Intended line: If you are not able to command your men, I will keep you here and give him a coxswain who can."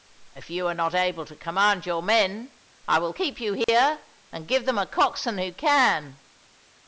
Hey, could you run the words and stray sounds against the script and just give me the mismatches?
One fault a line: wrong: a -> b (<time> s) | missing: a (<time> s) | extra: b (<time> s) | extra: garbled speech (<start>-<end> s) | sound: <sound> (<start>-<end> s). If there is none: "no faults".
sound: dropout (3.6-3.7 s)
wrong: him -> them (4.6 s)